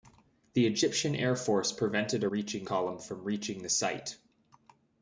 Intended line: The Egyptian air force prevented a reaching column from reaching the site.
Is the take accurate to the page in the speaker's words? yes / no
yes